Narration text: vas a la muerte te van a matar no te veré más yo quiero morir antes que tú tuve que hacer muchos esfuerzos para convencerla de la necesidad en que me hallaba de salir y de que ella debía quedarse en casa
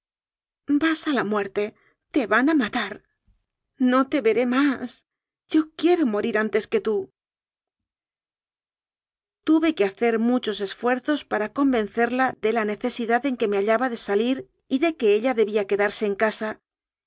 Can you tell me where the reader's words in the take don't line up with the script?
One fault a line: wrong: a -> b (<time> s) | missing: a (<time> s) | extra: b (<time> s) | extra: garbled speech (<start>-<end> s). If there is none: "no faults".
no faults